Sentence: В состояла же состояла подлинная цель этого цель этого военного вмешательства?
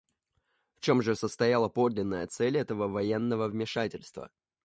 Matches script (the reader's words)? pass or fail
fail